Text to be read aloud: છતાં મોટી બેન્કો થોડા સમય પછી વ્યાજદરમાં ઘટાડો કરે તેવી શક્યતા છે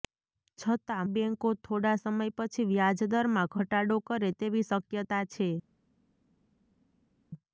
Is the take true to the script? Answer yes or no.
no